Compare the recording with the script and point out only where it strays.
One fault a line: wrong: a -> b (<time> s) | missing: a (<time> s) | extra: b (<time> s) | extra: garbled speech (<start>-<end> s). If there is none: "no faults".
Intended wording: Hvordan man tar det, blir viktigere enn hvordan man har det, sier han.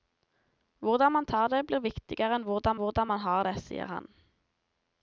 extra: hvordan (2.8 s)